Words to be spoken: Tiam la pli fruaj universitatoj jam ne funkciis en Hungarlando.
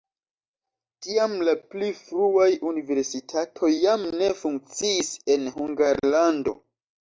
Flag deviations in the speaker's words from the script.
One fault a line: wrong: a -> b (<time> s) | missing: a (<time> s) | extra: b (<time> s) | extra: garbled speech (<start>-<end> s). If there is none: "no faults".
no faults